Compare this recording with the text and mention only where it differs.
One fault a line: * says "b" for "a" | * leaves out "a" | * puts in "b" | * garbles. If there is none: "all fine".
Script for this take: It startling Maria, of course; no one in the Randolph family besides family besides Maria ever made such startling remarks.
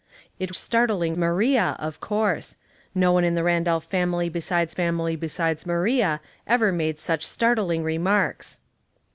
all fine